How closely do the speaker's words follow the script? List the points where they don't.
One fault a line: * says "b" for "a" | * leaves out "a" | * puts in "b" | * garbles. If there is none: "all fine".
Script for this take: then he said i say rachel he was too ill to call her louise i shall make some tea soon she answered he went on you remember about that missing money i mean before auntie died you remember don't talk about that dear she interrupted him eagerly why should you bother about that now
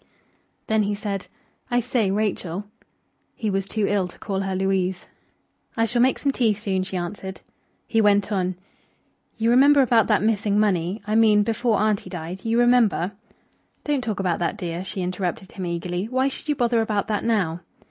all fine